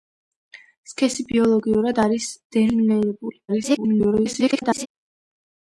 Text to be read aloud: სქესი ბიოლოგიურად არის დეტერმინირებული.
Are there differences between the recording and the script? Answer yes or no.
yes